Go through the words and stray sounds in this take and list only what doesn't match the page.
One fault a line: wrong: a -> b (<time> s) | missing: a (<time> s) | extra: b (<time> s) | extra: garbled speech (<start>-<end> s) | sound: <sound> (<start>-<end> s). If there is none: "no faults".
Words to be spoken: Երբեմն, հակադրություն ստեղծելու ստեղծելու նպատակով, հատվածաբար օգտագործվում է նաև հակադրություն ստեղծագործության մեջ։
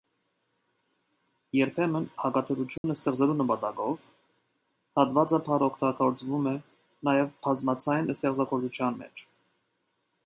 sound: dropout (2.8-2.8 s)
missing: ստեղծելու (3.4 s)
wrong: հակադրություն -> բազմաձայն (7.5 s)